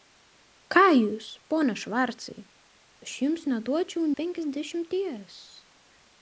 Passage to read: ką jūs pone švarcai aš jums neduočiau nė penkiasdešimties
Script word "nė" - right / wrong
wrong